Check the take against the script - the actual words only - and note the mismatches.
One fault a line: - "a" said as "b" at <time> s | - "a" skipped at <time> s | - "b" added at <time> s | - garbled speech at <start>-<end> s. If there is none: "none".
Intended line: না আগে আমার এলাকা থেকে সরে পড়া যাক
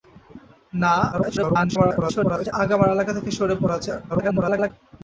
- garbled speech at 1.1-2.5 s
- garbled speech at 4.1-4.7 s